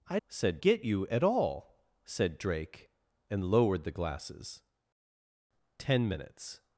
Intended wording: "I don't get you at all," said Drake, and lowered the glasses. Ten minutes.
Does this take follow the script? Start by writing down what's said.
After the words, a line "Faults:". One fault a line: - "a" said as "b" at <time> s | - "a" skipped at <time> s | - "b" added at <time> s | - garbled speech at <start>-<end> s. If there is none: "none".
"I said get you at all," said Drake, and lowered the glasses. Ten minutes.
Faults:
- "don't" said as "said" at 0.3 s